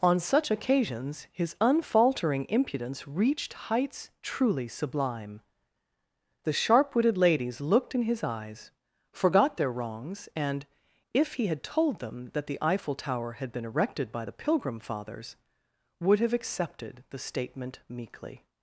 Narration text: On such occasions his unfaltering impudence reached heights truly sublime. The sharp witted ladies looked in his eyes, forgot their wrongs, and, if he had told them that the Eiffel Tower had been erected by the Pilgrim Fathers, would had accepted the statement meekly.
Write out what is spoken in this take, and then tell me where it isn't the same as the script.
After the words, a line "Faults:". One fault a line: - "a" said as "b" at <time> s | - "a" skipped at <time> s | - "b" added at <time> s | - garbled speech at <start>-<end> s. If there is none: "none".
On such occasions his unfaltering impudence reached heights truly sublime. The sharp witted ladies looked in his eyes, forgot their wrongs, and, if he had told them that the Eiffel Tower had been erected by the Pilgrim Fathers, would have accepted the statement meekly.
Faults:
- "had" said as "have" at 16.2 s